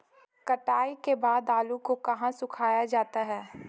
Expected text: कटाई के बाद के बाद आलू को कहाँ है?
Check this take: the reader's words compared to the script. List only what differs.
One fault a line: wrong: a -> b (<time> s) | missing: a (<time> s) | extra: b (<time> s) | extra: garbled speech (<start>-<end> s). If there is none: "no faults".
missing: के बाद (1.5 s)
extra: सुखाया जाता (2.3 s)